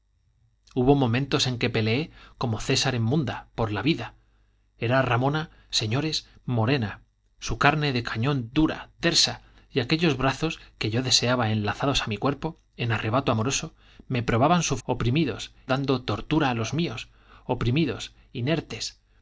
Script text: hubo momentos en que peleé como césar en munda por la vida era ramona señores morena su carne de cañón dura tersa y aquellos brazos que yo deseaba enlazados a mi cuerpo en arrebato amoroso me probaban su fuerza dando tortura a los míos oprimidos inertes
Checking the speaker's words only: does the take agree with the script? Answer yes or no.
no